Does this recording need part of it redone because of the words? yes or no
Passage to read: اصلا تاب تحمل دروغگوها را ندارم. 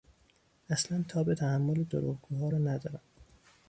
no